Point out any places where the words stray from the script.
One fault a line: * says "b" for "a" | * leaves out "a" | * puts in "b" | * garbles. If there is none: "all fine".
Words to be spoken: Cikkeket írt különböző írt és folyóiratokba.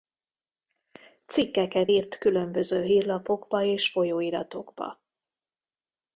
* says "hírlapokba" for "írt"